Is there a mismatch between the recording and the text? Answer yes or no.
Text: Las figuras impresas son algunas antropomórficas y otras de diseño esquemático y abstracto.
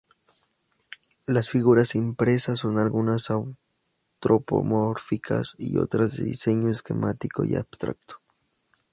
no